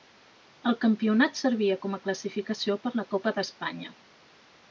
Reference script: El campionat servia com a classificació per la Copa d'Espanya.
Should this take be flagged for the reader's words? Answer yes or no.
no